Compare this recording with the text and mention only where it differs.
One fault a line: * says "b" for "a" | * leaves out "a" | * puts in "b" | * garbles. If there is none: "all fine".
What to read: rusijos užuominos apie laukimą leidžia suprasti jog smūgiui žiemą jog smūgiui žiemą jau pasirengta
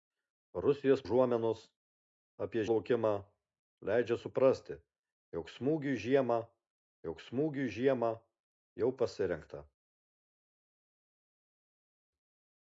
all fine